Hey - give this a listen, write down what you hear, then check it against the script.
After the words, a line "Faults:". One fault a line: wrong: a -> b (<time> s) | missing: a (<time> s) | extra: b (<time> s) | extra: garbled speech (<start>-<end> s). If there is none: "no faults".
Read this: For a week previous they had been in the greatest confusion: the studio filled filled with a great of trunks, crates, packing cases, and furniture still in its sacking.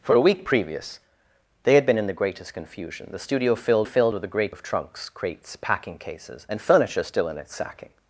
For a week previous they had been in the greatest confusion: the studio filled filled with a great of trunks, crates, packing cases, and furniture still in its sacking.
Faults:
no faults